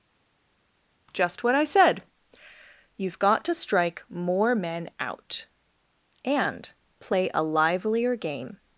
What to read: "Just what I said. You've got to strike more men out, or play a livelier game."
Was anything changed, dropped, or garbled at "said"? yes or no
no